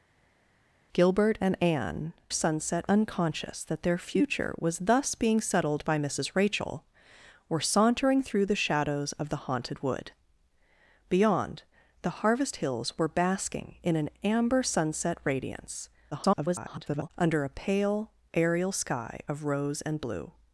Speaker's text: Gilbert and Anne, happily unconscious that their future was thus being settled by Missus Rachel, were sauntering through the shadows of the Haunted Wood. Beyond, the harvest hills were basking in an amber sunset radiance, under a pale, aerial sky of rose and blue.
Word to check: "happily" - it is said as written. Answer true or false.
false